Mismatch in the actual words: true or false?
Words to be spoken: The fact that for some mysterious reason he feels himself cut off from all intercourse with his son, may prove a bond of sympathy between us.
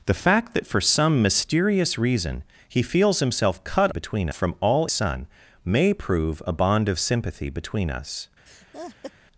true